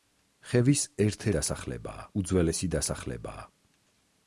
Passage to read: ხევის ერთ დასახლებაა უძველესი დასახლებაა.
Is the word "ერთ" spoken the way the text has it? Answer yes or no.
yes